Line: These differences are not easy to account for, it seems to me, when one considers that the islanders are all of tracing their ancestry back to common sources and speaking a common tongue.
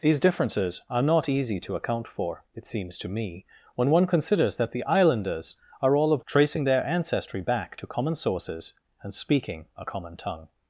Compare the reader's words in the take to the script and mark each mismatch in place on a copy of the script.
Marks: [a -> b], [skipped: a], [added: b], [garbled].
These differences are not easy to account for, it seems to me, when one considers that the islanders are all of tracing their ancestry back to common sources and speaking a common tongue.